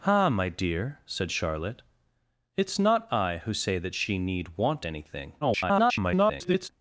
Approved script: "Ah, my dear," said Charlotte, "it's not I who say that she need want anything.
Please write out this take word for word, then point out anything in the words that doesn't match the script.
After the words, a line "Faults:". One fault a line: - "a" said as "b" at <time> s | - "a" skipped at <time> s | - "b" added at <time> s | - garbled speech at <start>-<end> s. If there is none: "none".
"Ah, my dear," said Charlotte, "it's not I who say that she need want anything. [garbled]
Faults:
- garbled speech at 5.4-6.7 s